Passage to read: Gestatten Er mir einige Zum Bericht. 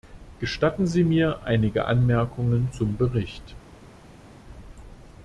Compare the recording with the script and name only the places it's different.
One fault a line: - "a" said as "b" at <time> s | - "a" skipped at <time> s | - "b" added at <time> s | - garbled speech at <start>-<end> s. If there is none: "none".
- "Er" said as "Sie" at 0.9 s
- "Anmerkungen" added at 1.9 s